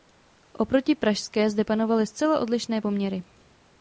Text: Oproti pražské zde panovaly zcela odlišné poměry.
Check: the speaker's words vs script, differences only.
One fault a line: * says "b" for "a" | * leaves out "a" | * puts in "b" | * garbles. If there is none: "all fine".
all fine